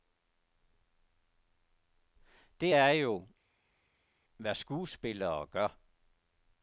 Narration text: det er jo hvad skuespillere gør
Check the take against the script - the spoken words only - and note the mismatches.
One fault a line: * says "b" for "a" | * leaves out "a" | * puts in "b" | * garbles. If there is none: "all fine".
all fine